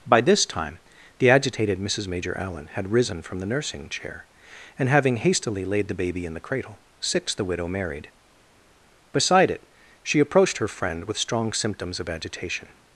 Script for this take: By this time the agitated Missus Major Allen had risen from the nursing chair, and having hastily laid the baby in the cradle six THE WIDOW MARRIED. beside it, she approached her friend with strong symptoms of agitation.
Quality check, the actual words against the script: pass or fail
pass